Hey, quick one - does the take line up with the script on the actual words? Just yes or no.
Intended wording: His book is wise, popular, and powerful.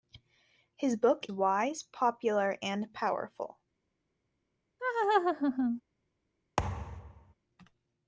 no